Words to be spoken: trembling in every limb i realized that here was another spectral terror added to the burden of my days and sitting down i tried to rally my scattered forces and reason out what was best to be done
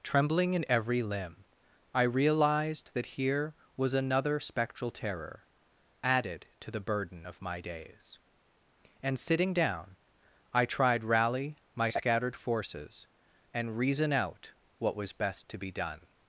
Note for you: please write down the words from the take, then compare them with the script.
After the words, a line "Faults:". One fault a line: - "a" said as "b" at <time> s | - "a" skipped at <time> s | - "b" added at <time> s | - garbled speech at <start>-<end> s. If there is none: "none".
trembling in every limb i realized that here was another spectral terror added to the burden of my days and sitting down i tried rally my scattered forces and reason out what was best to be done
Faults:
- "to" skipped at 11.0 s